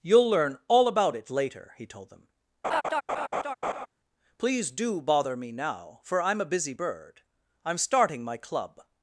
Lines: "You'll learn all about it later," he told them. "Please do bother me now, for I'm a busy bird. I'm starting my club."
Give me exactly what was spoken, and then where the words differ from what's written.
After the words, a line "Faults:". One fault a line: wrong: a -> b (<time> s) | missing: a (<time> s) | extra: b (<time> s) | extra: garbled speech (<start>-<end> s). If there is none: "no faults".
"You'll learn all about it later," he told them. "Please do bother me now, for I'm a busy bird. I'm starting my club."
Faults:
no faults